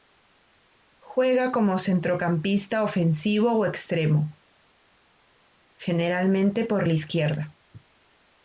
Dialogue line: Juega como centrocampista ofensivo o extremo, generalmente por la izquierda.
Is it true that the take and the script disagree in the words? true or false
false